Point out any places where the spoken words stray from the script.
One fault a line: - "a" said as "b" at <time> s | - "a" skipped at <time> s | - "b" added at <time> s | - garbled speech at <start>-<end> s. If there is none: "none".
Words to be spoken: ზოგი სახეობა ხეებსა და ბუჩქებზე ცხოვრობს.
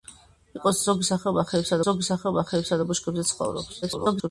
- "ზოგი სახეობა ხეებსა" added at 1.9 s
- garbled speech at 3.8-4.3 s